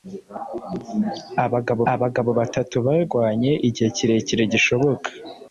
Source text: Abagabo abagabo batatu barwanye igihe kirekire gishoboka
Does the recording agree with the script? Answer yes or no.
yes